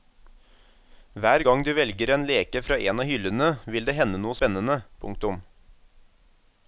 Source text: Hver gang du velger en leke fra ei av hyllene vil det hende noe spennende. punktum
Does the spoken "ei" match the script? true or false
false